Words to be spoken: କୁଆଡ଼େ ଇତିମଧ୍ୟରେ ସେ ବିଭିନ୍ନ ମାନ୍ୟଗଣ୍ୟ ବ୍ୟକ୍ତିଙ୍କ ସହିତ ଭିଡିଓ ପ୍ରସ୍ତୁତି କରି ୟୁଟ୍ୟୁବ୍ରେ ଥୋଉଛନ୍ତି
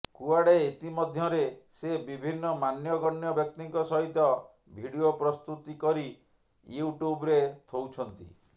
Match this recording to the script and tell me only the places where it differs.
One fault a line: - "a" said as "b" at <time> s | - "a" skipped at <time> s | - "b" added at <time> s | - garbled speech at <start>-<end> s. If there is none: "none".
none